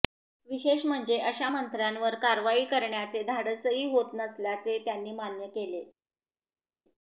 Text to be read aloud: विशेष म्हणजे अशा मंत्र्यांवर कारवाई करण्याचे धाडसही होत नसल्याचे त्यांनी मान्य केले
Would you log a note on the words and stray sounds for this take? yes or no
no